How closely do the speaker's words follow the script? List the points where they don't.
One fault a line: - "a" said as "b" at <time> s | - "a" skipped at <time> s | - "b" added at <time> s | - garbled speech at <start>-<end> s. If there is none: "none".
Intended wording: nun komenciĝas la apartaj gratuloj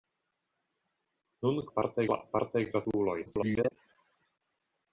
- "komenciĝas" said as "apartaj" at 1.7 s
- garbled speech at 3.3-3.7 s